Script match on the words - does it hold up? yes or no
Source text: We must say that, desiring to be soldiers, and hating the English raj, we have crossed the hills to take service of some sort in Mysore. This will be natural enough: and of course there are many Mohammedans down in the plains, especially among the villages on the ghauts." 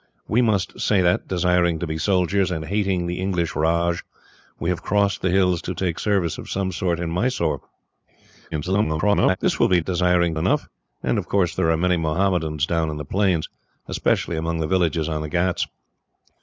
no